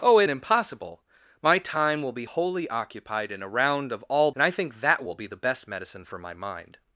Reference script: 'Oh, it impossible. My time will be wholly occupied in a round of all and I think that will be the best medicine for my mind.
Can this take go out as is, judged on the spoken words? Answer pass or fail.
pass